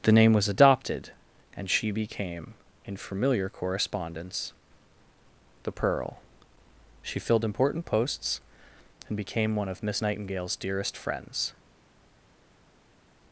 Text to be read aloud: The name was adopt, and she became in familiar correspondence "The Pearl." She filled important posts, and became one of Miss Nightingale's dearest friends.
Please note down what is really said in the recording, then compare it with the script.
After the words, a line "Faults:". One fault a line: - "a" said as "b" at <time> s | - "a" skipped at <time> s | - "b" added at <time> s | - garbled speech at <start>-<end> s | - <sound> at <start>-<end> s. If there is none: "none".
The name was adopted, and she became in familiar correspondence "The Pearl." She filled important posts, and became one of Miss Nightingale's dearest friends.
Faults:
- "adopt" said as "adopted" at 0.5 s